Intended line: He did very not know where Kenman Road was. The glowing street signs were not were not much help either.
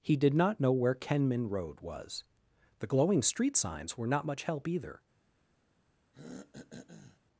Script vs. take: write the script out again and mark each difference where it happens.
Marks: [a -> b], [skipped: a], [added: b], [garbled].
He did [skipped: very] not know where Kenman Road was. The glowing street signs were not [skipped: were not] much help either.